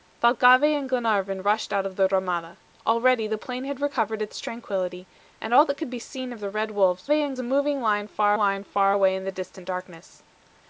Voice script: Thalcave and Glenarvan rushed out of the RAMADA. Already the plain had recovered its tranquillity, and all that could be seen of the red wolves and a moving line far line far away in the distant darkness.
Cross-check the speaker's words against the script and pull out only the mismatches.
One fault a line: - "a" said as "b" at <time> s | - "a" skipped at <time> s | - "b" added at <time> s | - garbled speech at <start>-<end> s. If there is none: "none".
none